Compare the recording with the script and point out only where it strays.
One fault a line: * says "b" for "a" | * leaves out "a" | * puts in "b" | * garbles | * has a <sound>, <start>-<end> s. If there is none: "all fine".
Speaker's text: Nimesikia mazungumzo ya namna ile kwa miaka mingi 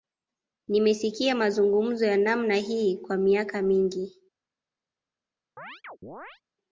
* says "hii" for "ile"
* has a chirp, 5.6-6.4 s